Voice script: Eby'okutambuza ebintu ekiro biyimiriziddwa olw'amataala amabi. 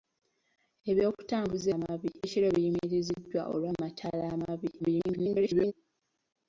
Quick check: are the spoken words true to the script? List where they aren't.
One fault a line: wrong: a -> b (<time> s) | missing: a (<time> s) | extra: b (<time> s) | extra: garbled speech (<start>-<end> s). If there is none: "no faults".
wrong: ebintu -> amabi (1.8 s)
extra: garbled speech (4.8-5.7 s)